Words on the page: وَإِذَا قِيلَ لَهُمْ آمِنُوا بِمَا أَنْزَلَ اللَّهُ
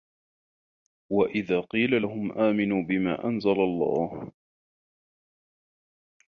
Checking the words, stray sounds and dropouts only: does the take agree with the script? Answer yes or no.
yes